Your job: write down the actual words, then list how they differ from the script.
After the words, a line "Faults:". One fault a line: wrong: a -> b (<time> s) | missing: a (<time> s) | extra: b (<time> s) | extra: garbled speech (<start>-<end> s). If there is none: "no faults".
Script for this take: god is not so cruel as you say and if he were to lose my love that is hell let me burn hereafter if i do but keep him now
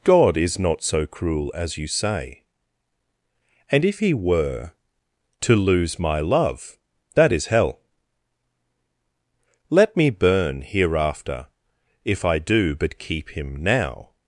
god is not so cruel as you say and if he were to lose my love that is hell let me burn hereafter if i do but keep him now
Faults:
no faults